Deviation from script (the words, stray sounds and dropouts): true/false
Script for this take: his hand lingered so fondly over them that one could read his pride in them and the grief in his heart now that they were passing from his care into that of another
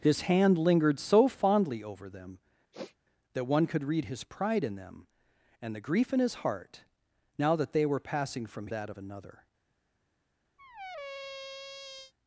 true